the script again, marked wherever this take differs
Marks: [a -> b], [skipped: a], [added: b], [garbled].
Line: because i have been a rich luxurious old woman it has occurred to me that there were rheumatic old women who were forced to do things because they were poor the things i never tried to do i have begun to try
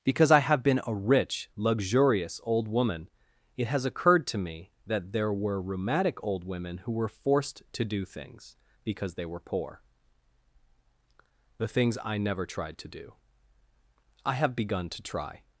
because i have been a rich luxurious old woman it has occurred to me that there were rheumatic old women who were forced to do things because they were poor the things i never tried to do i have begun to try